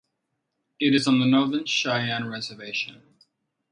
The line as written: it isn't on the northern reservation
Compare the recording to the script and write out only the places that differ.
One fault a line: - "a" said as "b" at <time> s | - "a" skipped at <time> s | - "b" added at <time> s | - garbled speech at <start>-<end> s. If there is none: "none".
- "isn't" said as "is" at 0.9 s
- "cheyenne" added at 1.6 s